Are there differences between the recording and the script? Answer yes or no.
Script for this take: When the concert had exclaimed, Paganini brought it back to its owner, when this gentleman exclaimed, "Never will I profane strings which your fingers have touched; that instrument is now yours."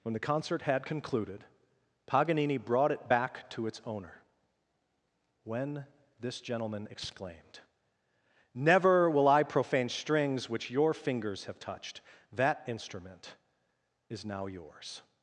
yes